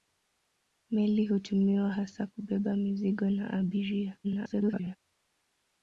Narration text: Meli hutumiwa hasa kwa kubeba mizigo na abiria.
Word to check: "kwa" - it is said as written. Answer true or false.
false